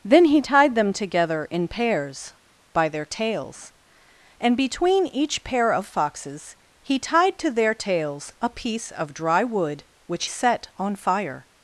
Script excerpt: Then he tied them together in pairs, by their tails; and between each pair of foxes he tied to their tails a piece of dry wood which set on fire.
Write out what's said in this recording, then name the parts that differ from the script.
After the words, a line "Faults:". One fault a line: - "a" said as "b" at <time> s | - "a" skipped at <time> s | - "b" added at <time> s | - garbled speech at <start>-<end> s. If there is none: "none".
Then he tied them together in pairs, by their tails; and between each pair of foxes he tied to their tails a piece of dry wood which set on fire.
Faults:
none